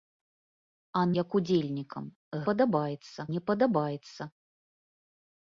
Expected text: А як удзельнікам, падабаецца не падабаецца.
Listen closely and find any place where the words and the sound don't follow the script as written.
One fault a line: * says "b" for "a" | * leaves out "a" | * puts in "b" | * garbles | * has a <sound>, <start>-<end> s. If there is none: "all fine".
all fine